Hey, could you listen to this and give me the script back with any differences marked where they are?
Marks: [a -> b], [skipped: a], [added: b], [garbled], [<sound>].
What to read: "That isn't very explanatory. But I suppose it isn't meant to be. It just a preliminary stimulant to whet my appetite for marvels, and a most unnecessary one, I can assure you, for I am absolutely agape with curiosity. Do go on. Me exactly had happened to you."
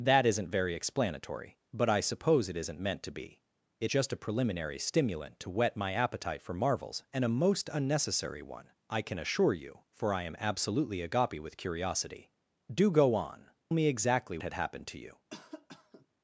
"That isn't very explanatory. But I suppose it isn't meant to be. It just a preliminary stimulant to whet my appetite for marvels, and a most unnecessary one, I can assure you, for I am absolutely agape with curiosity. Do go on. Me exactly had happened to you." [cough]